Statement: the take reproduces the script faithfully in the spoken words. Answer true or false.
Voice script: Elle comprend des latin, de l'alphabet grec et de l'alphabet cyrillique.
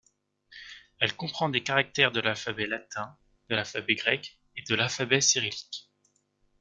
false